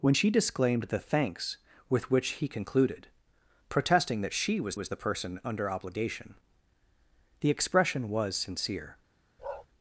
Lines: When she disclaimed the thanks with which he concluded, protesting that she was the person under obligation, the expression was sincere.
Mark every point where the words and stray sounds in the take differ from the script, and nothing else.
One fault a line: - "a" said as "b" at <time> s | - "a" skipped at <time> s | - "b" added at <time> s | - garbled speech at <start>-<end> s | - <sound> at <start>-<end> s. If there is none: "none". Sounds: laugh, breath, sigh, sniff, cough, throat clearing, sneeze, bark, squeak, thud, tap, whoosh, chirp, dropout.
- "was" added at 4.7 s
- bark at 9.4-9.7 s